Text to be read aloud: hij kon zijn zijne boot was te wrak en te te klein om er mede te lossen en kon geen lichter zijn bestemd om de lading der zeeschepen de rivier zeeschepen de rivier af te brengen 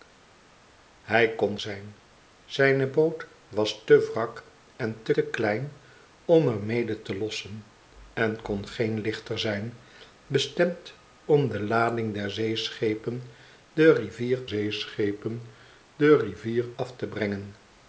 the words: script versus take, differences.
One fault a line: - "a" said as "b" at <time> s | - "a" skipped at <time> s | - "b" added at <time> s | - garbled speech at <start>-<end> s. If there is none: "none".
none